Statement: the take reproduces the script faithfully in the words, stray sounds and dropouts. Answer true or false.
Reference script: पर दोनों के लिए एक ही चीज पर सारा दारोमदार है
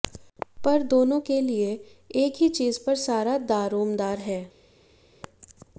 true